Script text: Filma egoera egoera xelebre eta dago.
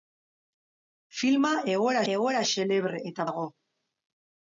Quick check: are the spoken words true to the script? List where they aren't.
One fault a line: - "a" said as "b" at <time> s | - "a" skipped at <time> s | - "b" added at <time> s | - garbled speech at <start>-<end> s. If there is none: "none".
none